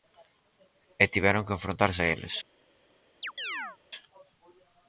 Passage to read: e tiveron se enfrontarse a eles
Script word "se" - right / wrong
wrong